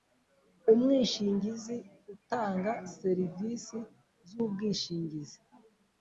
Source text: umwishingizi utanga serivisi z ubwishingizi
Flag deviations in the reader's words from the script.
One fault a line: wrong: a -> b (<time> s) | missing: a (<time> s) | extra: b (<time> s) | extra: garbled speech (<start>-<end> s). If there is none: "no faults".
no faults